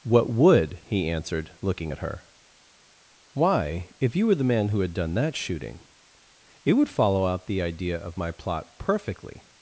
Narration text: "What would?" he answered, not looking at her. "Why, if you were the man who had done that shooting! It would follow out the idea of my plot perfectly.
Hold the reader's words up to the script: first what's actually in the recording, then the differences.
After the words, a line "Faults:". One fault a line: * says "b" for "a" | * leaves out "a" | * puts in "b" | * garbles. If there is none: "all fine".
"What would?" he answered, looking at her. "Why, if you were the man who had done that shooting! It would follow out the idea of my plot perfectly.
Faults:
* leaves out "not"